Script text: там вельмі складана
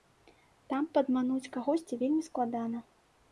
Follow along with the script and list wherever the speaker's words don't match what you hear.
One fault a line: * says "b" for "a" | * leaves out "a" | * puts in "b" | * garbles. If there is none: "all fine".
* puts in "падмануць кагосьці"